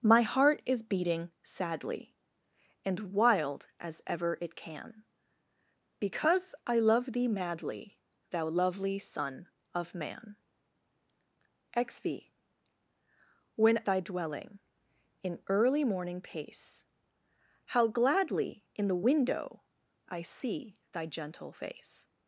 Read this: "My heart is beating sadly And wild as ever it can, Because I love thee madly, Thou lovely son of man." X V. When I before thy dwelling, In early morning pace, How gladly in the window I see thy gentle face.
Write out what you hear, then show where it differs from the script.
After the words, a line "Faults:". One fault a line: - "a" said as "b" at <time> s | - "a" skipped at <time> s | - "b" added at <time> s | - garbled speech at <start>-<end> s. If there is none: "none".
"My heart is beating sadly And wild as ever it can, Because I love thee madly, Thou lovely son of man." X V. When thy dwelling, In early morning pace, How gladly in the window I see thy gentle face.
Faults:
- "I before" skipped at 13.8 s